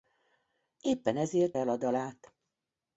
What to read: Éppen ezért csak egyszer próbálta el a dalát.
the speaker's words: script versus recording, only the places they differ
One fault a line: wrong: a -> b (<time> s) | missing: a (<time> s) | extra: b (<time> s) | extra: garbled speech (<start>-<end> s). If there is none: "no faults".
missing: csak egyszer próbálta (1.6 s)